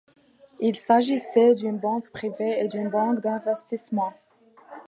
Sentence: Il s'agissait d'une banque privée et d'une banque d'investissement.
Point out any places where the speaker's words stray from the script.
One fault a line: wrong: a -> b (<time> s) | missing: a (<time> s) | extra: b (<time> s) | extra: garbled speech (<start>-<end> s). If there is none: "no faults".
no faults